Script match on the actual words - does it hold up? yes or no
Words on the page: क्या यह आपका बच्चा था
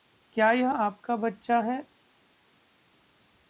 no